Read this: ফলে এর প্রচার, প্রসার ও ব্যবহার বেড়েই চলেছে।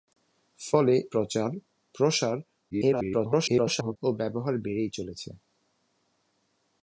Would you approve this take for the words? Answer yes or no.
no